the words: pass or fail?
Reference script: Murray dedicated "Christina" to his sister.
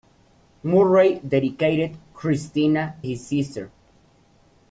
fail